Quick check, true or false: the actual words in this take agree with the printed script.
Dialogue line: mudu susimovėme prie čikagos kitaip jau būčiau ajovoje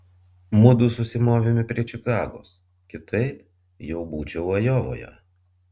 true